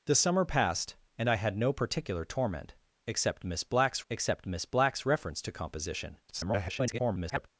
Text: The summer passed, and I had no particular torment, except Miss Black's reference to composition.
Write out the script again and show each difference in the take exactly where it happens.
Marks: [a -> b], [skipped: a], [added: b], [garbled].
The summer passed, and I had no particular torment, except Miss Black's [added: except Miss Black's] reference to composition. [garbled]